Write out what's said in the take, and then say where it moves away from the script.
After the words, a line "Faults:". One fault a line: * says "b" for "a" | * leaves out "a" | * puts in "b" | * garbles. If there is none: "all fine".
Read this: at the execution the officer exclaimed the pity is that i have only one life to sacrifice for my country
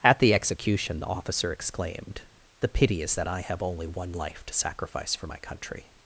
at the execution the officer exclaimed the pity is that i have only one life to sacrifice for my country
Faults:
all fine